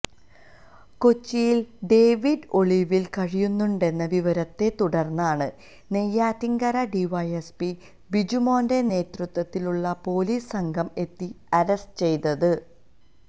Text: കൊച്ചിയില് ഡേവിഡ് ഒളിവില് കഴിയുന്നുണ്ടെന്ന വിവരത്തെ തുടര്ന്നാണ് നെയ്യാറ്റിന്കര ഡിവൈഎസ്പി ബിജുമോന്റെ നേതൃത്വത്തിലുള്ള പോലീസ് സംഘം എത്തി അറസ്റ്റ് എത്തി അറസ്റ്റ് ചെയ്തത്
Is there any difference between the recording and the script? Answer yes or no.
yes